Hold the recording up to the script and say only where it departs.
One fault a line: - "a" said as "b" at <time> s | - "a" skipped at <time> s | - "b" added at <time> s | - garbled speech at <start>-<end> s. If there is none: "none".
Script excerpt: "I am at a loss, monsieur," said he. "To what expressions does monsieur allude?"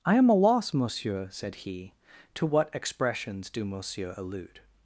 - "at" skipped at 0.3 s
- "does" said as "do" at 3.5 s